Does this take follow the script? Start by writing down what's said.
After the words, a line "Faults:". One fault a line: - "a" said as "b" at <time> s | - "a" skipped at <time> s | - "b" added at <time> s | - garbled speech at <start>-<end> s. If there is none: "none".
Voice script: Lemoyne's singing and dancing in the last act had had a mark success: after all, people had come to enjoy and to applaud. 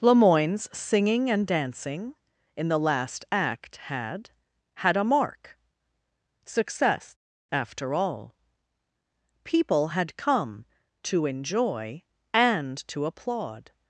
Lemoyne's singing and dancing in the last act had had a mark success: after all, people had come to enjoy and to applaud.
Faults:
none